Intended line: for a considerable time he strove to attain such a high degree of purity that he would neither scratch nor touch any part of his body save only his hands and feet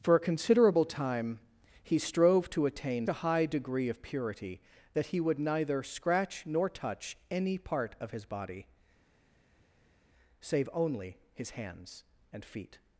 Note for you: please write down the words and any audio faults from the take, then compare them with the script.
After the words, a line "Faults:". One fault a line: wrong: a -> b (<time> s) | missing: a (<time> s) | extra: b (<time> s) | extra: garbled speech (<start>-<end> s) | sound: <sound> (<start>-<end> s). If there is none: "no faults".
for a considerable time he strove to attain a high degree of purity that he would neither scratch nor touch any part of his body save only his hands and feet
Faults:
missing: such (3.0 s)